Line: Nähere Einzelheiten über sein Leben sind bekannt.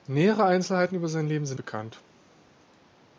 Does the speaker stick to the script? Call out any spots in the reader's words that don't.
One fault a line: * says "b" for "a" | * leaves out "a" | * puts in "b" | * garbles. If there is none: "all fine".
all fine